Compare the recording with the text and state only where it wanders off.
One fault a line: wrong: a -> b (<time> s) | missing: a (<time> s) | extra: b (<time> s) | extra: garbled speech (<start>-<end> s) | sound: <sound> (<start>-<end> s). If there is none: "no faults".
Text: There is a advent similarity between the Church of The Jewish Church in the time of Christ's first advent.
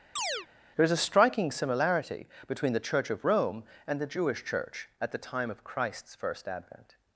sound: chirp (0.2-0.5 s)
wrong: advent -> striking (1.0 s)
extra: Rome and (3.3 s)
wrong: in -> at (5.0 s)